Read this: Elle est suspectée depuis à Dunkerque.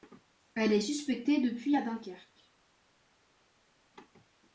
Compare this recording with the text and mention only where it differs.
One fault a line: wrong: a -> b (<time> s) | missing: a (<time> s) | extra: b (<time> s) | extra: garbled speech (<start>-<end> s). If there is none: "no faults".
no faults